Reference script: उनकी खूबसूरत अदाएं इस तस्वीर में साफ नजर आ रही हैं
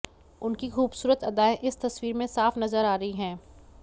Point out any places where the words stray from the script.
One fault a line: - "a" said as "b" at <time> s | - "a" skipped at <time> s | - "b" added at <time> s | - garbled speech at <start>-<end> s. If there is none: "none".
none